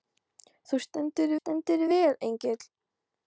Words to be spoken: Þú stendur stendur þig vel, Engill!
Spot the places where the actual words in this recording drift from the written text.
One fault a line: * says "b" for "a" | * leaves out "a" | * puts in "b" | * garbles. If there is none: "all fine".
all fine